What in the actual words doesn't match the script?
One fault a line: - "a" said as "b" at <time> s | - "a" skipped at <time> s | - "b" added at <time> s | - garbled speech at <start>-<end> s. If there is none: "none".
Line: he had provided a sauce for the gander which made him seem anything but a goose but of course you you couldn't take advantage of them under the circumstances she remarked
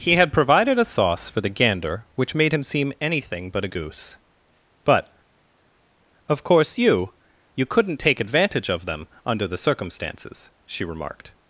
none